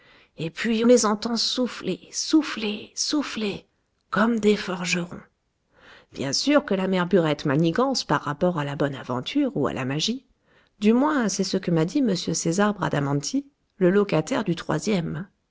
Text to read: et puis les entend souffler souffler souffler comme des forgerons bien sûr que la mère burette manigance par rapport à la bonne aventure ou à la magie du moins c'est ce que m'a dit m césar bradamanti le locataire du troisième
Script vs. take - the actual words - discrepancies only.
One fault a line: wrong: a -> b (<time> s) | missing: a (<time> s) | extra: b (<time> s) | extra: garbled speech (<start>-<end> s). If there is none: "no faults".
no faults